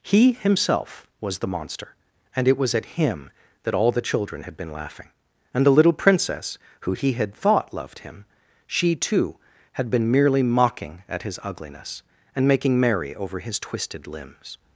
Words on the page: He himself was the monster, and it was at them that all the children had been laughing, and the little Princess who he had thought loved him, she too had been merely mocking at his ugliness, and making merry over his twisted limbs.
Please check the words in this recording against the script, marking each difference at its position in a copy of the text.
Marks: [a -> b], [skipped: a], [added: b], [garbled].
He himself was the monster, and it was at [them -> him] that all the children had been laughing, and the little Princess who he had thought loved him, she too had been merely mocking at his ugliness, and making merry over his twisted limbs.